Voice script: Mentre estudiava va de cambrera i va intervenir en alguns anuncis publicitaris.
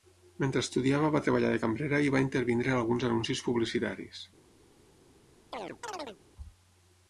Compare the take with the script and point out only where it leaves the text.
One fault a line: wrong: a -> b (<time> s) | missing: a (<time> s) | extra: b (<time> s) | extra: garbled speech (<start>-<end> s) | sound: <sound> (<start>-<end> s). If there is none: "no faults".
extra: treballar (1.2 s)
sound: chirp (5.5-6.2 s)